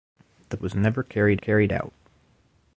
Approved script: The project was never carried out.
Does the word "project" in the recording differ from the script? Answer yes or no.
yes